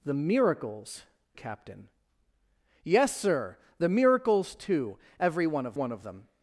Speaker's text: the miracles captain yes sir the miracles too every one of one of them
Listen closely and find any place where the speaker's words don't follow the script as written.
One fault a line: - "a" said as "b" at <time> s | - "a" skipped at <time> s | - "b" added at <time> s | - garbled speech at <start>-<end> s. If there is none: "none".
none